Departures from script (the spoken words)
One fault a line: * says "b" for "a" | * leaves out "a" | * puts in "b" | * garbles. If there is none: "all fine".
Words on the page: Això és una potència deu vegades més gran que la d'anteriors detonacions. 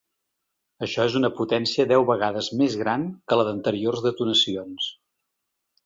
all fine